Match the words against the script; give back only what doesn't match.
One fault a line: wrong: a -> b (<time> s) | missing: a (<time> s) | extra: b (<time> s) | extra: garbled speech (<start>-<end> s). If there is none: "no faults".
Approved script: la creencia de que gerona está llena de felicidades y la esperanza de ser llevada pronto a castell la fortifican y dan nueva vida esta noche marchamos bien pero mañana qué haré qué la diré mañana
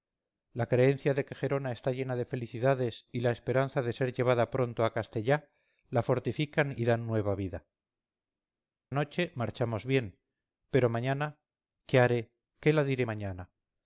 missing: esta (7.7 s)